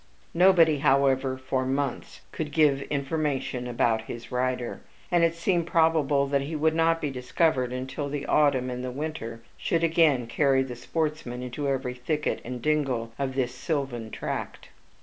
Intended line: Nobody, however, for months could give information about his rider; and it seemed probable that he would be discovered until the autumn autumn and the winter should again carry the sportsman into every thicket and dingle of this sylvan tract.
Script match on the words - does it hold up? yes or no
no